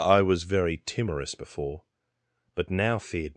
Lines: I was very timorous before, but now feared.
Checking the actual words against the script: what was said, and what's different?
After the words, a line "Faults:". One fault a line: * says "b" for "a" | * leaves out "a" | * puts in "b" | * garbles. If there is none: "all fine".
I was very timorous before, but now feared.
Faults:
all fine